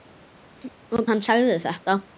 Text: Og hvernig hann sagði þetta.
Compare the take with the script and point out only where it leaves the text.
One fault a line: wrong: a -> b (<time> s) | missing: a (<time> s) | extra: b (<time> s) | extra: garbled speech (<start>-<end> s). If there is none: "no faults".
missing: hvernig (1.0 s)